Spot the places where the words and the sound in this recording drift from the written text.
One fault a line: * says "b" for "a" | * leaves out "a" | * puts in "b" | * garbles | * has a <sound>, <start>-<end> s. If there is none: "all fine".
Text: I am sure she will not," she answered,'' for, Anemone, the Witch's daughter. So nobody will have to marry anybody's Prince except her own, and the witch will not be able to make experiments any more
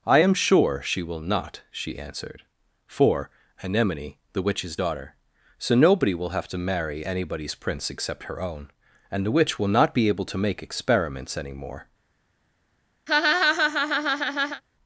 * has a laugh, 13.1-14.6 s